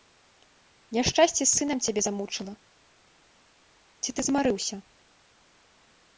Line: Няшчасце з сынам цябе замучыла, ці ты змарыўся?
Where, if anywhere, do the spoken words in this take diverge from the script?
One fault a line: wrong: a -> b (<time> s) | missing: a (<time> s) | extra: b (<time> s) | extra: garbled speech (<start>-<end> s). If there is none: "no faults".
no faults